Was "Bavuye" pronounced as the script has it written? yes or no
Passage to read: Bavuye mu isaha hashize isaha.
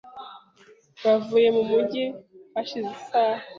yes